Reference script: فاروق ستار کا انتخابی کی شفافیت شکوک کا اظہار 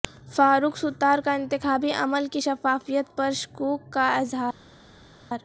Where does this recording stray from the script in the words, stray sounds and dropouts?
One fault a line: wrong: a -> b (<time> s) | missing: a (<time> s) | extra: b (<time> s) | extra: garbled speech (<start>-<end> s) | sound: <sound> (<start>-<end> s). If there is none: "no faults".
extra: عمل (1.9 s)
extra: پر (3.2 s)